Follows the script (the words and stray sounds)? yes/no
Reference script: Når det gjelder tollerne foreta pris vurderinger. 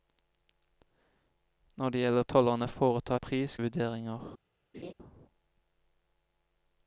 no